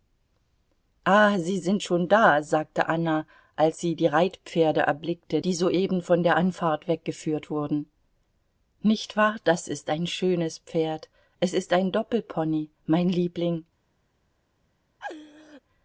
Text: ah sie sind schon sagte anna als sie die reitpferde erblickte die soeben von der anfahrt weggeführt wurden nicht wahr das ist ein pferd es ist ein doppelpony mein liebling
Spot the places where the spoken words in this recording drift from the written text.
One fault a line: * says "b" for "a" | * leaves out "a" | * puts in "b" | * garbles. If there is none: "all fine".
* puts in "da"
* puts in "schönes"